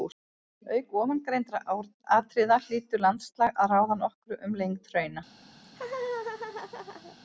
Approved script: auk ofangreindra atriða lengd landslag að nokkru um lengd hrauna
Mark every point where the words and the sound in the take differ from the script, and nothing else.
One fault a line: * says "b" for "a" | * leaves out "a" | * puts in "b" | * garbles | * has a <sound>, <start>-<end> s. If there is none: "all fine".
* says "hlýtur" for "lengd"
* puts in "ráða"
* has a laugh, 5.6-7.2 s